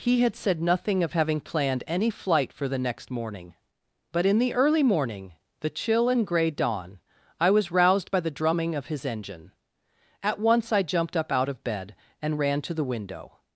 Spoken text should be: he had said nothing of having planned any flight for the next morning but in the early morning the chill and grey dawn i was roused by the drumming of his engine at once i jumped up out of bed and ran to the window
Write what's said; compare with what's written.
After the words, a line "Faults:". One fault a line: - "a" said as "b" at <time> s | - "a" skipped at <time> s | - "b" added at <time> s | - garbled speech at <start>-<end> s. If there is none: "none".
he had said nothing of having planned any flight for the next morning but in the early morning the chill and grey dawn i was roused by the drumming of his engine at once i jumped up out of bed and ran to the window
Faults:
none